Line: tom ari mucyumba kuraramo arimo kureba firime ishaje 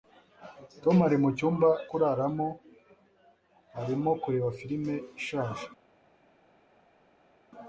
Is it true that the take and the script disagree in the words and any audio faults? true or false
false